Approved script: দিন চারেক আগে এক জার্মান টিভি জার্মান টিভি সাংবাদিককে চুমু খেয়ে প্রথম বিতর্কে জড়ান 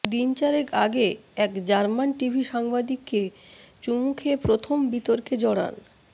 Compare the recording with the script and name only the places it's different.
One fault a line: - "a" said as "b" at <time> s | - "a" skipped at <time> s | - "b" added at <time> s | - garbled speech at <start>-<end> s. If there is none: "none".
- "জার্মান টিভি" skipped at 2.4 s